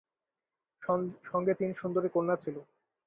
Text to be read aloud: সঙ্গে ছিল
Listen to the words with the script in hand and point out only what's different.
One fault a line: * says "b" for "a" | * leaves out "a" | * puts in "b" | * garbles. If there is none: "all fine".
* puts in "তিন সুন্দরী কন্যা"